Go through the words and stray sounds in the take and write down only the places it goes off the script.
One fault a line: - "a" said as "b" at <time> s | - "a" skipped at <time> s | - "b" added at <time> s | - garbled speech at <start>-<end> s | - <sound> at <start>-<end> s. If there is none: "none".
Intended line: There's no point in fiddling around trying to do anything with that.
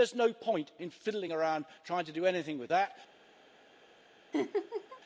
- laugh at 4.3-5.0 s